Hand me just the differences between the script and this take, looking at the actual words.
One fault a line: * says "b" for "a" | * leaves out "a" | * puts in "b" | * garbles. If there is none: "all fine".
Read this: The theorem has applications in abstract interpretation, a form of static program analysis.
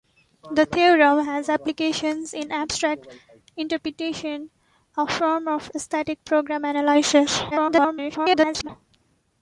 * garbles